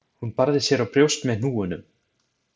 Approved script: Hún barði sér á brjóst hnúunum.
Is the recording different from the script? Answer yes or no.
yes